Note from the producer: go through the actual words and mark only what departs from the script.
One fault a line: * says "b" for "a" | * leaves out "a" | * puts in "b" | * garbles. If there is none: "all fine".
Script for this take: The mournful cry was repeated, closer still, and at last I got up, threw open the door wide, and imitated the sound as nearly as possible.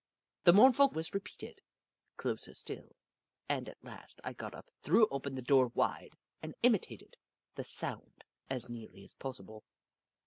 * leaves out "cry"